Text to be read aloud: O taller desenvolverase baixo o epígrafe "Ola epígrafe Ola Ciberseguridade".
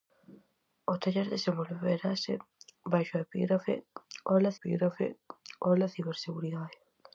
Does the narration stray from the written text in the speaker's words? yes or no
no